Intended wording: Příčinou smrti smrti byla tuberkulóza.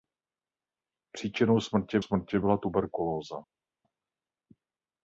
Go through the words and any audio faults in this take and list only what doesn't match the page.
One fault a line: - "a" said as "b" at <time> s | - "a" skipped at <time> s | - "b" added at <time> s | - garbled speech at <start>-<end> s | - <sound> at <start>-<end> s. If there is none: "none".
none